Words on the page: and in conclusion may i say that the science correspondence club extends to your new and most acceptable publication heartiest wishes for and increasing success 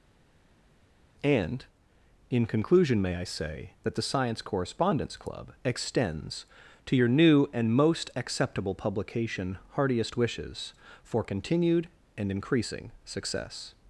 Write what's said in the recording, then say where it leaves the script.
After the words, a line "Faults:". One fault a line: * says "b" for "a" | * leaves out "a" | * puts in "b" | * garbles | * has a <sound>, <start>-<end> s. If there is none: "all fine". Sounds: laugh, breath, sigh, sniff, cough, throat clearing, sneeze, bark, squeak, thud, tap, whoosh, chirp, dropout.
and in conclusion may i say that the science correspondence club extends to your new and most acceptable publication heartiest wishes for continued and increasing success
Faults:
* puts in "continued"